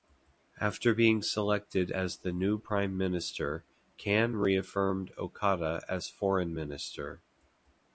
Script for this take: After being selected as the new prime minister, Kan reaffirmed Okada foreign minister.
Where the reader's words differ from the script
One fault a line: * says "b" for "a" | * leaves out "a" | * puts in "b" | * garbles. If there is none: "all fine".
* puts in "as"